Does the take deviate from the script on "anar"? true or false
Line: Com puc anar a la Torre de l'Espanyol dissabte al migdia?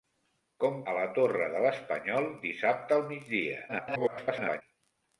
true